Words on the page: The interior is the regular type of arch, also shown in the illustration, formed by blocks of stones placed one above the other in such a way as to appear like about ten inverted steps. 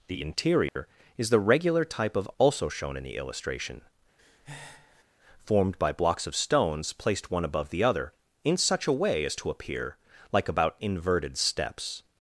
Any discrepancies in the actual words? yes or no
yes